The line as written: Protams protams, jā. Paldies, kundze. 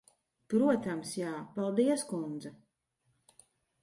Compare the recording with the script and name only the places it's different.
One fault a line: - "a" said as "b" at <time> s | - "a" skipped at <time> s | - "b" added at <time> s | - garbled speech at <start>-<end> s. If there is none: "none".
- "protams" skipped at 1.1 s